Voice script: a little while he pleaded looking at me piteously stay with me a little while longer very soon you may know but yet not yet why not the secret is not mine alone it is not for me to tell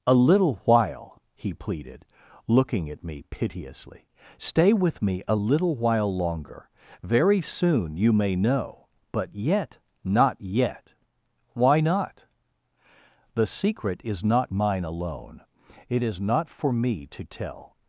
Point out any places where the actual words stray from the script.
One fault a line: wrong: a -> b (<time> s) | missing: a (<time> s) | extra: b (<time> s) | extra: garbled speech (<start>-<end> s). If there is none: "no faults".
no faults